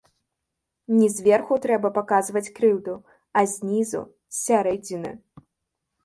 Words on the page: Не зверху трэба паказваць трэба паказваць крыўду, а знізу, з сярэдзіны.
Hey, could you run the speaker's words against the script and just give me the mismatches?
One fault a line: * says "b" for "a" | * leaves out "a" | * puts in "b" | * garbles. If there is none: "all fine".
* leaves out "трэба паказваць"